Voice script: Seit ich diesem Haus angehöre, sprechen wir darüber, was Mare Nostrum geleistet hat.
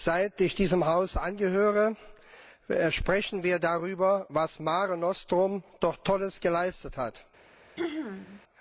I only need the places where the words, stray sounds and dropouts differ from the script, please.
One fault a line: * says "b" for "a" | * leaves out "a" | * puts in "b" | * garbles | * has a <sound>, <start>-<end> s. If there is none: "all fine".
* puts in "doch Tolles"
* has a throat clearing, 7.8-8.4 s